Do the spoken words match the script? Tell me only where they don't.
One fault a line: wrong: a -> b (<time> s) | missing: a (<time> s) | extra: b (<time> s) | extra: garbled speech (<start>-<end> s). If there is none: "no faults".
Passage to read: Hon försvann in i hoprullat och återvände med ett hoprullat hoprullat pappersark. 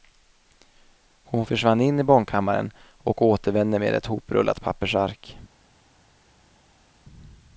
wrong: hoprullat -> barnkammaren (2.0 s)
missing: hoprullat (4.6 s)